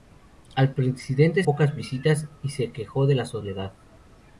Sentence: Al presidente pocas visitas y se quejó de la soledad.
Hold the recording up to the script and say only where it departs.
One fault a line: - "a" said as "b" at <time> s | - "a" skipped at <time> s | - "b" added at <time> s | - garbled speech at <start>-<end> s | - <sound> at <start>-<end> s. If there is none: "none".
none